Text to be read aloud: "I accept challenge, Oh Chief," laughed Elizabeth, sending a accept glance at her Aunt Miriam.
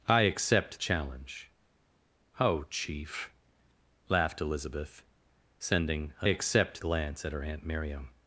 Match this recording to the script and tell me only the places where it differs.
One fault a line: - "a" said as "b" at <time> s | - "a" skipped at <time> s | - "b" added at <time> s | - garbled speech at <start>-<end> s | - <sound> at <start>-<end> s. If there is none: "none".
none